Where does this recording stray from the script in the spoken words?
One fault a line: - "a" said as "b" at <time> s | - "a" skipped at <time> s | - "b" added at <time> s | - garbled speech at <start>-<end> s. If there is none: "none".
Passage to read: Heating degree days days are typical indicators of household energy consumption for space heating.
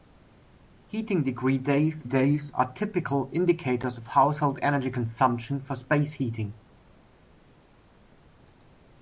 none